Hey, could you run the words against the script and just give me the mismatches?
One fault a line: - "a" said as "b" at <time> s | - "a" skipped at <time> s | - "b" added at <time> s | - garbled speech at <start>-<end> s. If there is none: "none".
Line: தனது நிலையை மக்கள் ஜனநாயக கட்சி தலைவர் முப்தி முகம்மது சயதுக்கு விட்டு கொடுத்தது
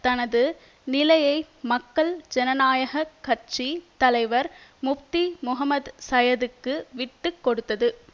none